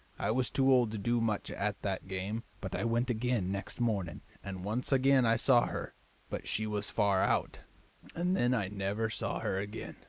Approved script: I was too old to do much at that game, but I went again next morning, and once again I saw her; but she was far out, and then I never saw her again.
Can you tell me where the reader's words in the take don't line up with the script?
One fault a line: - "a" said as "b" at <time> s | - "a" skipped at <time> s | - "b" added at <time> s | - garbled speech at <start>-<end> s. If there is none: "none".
none